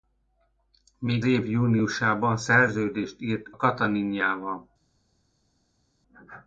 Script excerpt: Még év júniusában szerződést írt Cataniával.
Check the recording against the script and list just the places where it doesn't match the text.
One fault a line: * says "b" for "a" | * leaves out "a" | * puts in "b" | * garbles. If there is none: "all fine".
all fine